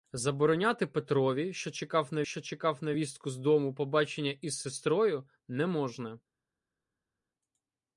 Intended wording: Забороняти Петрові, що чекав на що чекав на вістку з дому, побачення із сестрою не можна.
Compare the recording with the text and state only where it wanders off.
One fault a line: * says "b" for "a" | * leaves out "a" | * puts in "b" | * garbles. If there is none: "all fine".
all fine